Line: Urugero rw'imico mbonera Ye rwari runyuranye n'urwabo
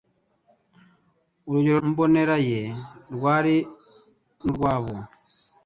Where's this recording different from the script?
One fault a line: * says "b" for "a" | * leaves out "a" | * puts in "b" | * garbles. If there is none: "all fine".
* leaves out "rw'imico"
* leaves out "runyuranye"